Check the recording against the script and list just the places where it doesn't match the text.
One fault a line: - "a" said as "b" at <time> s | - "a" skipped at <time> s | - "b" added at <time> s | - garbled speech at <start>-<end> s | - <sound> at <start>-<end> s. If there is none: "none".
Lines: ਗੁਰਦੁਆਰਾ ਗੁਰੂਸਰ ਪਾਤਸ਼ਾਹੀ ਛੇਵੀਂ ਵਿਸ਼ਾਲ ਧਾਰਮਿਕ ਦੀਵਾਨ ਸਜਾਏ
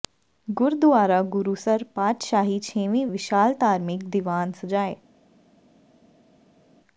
none